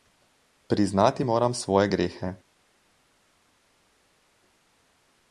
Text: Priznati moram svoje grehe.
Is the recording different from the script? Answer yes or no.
no